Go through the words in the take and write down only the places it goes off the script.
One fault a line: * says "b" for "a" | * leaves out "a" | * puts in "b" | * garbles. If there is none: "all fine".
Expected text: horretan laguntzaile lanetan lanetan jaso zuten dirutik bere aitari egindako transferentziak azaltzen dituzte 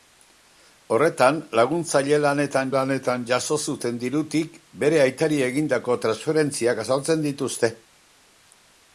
all fine